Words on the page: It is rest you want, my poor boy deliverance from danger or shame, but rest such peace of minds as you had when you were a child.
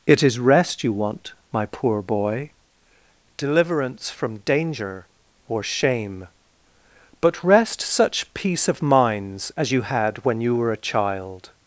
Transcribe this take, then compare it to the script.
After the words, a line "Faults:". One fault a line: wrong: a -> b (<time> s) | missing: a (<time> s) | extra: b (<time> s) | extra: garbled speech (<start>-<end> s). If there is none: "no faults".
It is rest you want, my poor boy deliverance from danger or shame, but rest such peace of minds as you had when you were a child.
Faults:
no faults